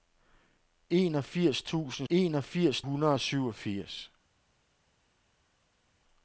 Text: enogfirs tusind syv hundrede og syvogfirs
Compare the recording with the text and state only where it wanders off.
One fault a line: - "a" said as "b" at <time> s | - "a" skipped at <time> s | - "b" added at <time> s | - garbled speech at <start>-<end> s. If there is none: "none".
- "syv" said as "enogfirs" at 2.1 s